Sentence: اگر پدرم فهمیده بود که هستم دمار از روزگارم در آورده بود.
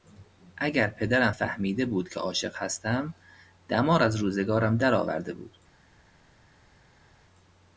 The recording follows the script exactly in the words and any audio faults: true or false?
false